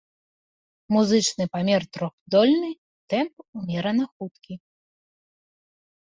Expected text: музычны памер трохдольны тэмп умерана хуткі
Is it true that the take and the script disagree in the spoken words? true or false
false